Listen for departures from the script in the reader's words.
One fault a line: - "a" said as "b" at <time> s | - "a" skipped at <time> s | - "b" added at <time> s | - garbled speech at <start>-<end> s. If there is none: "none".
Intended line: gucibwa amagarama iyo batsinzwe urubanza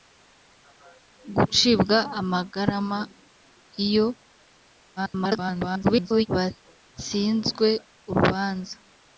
- garbled speech at 5.0-6.3 s